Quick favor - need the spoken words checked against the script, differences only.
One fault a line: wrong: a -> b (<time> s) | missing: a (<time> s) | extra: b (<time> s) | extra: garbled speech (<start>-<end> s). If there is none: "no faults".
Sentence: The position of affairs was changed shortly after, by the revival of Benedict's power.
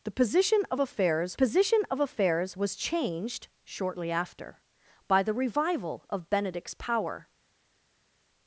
extra: position of affairs (1.3 s)